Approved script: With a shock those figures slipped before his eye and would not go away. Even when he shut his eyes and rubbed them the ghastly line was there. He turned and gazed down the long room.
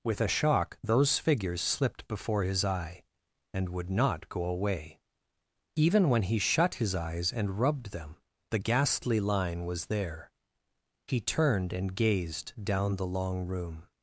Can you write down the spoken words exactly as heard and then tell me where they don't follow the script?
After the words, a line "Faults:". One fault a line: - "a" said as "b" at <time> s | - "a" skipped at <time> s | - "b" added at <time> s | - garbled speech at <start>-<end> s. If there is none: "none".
With a shock those figures slipped before his eye and would not go away. Even when he shut his eyes and rubbed them the ghastly line was there. He turned and gazed down the long room.
Faults:
none